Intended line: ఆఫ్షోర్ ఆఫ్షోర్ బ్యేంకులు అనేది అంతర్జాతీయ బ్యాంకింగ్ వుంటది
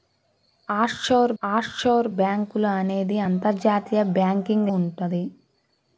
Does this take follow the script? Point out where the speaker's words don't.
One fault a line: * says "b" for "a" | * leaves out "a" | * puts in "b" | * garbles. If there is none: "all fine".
all fine